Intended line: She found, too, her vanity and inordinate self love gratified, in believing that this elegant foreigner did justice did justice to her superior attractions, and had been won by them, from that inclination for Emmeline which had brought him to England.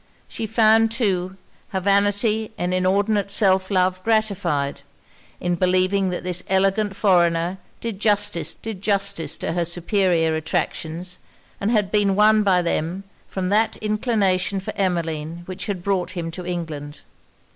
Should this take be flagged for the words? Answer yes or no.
no